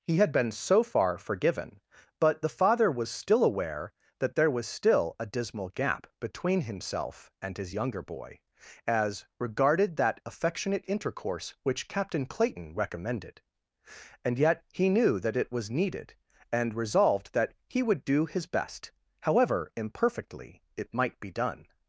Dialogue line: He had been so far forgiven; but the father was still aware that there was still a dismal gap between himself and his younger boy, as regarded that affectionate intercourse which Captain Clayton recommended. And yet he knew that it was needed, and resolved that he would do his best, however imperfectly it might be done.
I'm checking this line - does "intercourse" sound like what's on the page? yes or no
yes